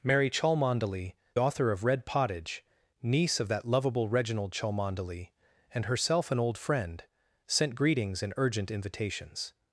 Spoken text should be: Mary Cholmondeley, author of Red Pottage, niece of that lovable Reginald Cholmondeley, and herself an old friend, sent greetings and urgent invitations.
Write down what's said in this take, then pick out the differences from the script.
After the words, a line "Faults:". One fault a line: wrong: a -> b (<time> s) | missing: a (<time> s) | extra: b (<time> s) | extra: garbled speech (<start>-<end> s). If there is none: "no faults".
Mary Cholmondeley, author of Red Pottage, niece of that lovable Reginald Cholmondeley, and herself an old friend, sent greetings and urgent invitations.
Faults:
no faults